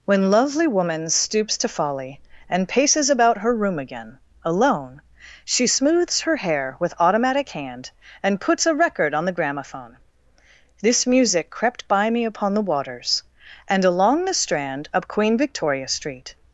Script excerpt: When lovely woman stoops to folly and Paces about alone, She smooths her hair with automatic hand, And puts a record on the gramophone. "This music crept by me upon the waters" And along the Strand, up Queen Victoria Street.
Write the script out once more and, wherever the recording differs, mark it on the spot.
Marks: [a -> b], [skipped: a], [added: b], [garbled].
When lovely woman stoops to folly and Paces about [added: her room again] alone, She smooths her hair with automatic hand, And puts a record on the gramophone. "This music crept by me upon the waters" And along the Strand, up Queen Victoria Street.